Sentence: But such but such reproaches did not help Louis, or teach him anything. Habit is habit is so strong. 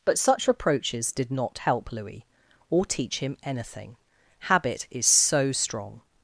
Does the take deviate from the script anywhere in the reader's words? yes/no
yes